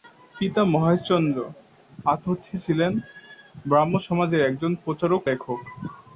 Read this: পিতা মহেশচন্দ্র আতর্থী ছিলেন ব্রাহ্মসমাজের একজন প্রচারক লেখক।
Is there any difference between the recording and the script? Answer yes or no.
no